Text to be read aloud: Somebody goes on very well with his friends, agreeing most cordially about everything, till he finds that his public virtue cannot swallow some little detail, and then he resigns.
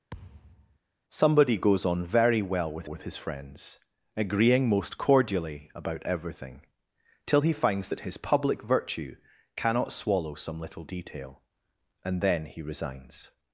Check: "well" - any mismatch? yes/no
no